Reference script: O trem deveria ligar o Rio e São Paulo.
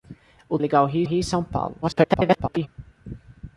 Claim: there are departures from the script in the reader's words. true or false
true